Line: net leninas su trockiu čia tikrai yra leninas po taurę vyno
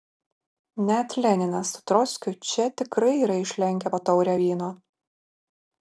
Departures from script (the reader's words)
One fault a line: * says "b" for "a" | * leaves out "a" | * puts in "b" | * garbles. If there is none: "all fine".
* says "išlenkę" for "leninas"